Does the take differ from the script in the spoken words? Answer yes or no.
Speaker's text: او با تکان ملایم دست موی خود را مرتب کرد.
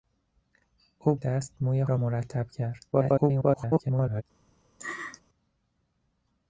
yes